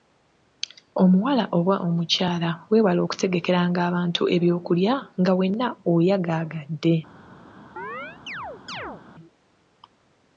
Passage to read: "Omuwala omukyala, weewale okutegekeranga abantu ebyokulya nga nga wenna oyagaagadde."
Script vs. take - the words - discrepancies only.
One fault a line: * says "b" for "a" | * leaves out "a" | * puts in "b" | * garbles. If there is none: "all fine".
* puts in "oba"
* leaves out "nga"